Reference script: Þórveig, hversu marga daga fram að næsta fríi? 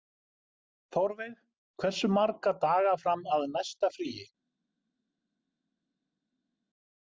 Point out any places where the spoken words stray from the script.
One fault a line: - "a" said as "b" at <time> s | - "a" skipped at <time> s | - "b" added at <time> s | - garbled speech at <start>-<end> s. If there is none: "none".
none